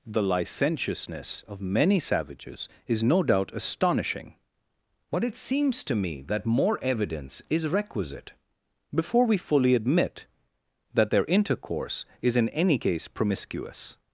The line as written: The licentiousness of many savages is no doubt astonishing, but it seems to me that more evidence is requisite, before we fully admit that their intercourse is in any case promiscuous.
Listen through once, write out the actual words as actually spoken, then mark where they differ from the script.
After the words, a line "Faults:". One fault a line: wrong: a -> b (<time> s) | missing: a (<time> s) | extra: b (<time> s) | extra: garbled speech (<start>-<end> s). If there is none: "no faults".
The licentiousness of many savages is no doubt astonishing, but it seems to me that more evidence is requisite, before we fully admit that their intercourse is in any case promiscuous.
Faults:
no faults